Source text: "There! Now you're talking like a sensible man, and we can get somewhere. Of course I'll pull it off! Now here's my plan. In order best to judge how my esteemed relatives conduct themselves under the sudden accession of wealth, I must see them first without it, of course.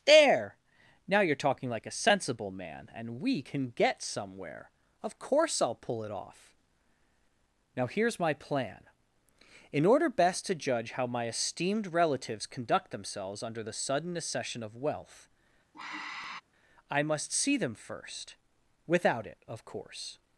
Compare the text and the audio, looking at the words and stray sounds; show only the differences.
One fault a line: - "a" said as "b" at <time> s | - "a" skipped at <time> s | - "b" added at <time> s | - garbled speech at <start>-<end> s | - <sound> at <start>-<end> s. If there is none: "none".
- sigh at 15.7-16.4 s